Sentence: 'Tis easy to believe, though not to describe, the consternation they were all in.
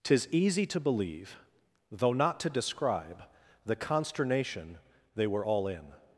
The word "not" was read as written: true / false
true